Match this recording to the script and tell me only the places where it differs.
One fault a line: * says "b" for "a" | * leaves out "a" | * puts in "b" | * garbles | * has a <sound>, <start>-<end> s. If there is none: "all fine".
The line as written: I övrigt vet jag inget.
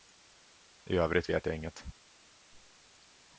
all fine